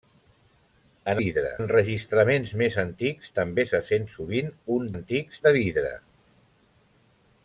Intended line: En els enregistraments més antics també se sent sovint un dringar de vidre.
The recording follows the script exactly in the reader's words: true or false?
false